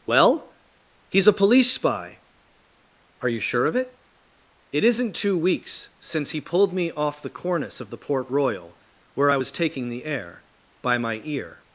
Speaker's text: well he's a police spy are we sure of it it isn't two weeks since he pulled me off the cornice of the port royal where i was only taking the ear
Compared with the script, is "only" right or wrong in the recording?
wrong